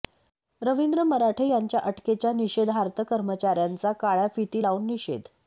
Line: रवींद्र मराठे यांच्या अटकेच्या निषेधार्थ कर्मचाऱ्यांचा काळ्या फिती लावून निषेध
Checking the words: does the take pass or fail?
pass